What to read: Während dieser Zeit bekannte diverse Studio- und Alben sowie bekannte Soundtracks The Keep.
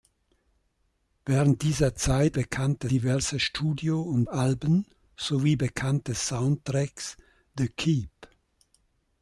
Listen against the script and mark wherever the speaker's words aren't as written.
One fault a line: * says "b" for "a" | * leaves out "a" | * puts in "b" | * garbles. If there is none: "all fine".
all fine